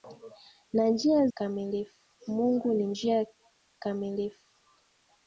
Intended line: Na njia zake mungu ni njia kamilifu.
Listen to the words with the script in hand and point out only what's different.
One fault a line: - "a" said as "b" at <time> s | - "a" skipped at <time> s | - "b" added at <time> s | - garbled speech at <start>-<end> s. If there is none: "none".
- "zake" said as "kamilifu" at 1.3 s